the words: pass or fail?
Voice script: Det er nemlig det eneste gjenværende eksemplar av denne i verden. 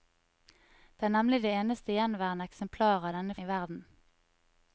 pass